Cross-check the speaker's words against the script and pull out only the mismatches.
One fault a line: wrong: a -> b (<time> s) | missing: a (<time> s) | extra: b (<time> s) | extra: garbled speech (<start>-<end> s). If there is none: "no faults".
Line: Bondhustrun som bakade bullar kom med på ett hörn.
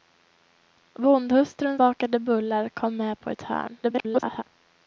missing: som (1.8 s)
extra: garbled speech (3.8-4.4 s)